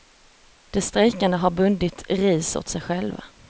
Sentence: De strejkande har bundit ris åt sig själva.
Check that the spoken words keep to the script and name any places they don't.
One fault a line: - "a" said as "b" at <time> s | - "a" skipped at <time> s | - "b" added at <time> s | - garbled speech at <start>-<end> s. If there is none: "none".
none